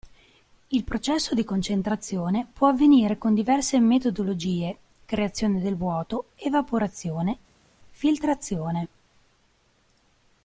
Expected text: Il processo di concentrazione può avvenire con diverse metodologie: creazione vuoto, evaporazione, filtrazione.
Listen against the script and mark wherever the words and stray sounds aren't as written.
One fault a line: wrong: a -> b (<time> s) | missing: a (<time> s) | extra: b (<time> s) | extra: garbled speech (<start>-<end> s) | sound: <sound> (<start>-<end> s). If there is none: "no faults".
extra: del (5.6 s)